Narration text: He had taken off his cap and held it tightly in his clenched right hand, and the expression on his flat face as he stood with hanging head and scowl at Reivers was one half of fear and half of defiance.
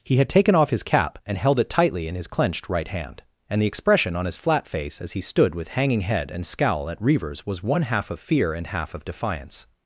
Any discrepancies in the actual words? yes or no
no